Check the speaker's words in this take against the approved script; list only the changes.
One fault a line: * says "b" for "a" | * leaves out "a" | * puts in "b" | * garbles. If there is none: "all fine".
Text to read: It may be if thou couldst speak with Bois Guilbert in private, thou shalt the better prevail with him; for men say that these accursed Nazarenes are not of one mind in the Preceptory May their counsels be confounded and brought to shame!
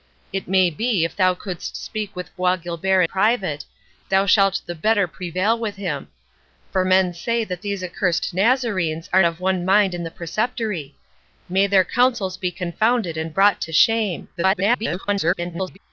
* leaves out "in"
* leaves out "not"
* garbles